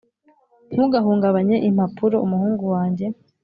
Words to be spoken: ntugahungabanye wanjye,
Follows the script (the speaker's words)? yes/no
no